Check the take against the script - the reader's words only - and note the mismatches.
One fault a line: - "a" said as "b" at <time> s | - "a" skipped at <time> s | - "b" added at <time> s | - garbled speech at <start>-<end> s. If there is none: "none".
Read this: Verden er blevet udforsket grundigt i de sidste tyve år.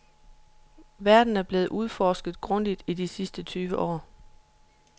none